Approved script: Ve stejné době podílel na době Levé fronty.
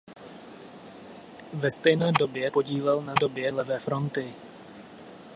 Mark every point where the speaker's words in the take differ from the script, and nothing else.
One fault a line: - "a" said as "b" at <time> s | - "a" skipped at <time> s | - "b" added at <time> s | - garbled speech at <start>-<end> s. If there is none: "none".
none